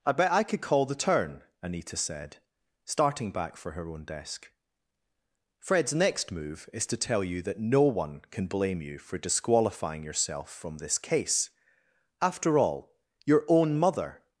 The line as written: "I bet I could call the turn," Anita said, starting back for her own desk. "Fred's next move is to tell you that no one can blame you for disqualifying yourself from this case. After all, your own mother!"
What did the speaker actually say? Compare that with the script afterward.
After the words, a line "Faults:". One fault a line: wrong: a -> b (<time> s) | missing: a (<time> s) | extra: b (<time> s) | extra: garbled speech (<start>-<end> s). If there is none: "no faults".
"I bet I could call the turn," Anita said, starting back for her own desk. "Fred's next move is to tell you that no one can blame you for disqualifying yourself from this case. After all, your own mother!"
Faults:
no faults